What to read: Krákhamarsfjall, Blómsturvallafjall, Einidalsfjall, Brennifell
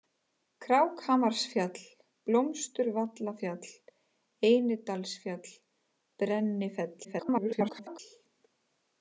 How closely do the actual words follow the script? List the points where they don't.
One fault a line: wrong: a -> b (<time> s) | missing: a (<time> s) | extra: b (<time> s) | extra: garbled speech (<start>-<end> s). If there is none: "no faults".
extra: garbled speech (7.0-8.0 s)